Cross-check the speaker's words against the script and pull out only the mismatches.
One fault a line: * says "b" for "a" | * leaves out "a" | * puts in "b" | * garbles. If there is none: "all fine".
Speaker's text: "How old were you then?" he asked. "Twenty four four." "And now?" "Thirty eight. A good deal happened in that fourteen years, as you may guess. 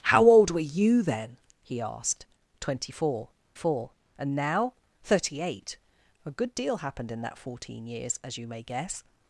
all fine